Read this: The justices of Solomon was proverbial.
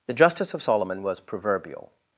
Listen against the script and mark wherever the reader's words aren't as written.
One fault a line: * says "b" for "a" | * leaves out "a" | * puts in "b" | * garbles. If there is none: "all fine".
* says "justice" for "justices"